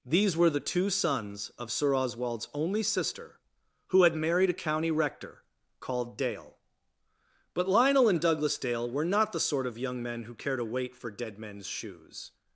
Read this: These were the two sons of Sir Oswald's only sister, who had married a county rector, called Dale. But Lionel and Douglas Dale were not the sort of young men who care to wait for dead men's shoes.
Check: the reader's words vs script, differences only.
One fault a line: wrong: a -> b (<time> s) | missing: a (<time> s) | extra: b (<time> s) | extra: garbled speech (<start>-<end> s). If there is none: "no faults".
no faults